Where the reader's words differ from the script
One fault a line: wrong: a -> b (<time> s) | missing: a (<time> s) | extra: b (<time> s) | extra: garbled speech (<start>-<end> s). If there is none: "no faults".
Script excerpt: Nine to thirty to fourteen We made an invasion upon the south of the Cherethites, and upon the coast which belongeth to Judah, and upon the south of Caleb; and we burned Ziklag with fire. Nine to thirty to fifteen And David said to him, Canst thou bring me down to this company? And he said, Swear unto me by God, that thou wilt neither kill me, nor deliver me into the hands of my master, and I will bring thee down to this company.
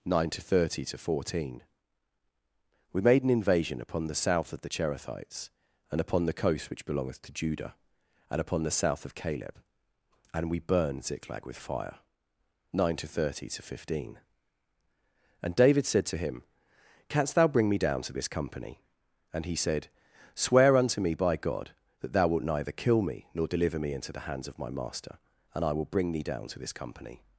no faults